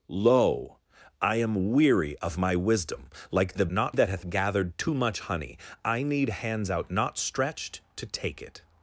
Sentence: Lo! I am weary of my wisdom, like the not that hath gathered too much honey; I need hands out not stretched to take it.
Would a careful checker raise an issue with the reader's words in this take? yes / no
no